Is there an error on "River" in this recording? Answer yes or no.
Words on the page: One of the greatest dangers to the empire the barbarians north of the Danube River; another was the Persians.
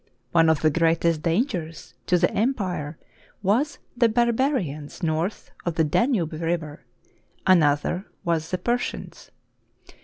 no